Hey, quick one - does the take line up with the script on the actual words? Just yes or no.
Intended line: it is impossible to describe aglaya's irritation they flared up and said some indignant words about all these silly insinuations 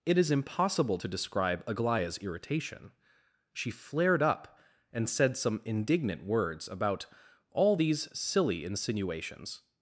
no